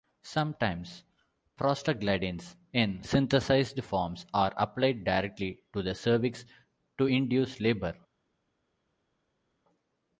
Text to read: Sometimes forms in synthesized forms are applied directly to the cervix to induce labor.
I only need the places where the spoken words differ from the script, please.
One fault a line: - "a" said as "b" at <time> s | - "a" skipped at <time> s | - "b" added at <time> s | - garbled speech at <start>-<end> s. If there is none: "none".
- "forms" said as "prostaglandins" at 1.6 s